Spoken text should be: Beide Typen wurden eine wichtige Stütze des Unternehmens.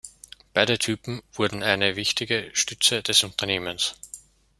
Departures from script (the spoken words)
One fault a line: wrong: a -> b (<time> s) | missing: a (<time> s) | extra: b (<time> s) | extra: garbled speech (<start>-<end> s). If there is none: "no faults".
no faults